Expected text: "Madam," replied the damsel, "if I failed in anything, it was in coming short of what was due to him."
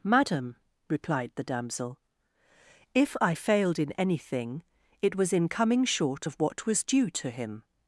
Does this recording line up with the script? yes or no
yes